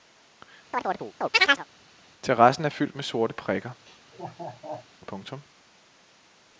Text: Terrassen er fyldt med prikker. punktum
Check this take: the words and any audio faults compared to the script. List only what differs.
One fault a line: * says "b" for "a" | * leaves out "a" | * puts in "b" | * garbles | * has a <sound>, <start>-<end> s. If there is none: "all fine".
* has a chirp, 0.7-1.7 s
* puts in "sorte"
* has a laugh, 3.8-4.9 s